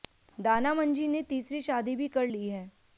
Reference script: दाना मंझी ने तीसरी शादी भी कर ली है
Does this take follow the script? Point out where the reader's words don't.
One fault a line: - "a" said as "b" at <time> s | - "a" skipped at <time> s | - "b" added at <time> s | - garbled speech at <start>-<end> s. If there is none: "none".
none